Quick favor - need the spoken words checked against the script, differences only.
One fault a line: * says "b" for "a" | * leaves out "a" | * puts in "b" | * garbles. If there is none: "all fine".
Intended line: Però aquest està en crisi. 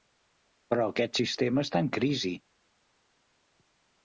* puts in "sistema"